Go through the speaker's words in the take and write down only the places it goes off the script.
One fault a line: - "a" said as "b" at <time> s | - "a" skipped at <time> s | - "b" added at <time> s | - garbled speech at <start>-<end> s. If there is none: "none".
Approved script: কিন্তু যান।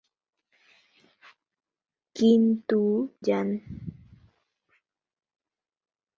none